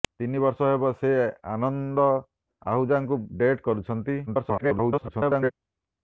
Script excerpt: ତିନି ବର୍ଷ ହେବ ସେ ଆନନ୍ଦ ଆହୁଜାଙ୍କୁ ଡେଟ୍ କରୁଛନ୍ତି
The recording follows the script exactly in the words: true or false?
false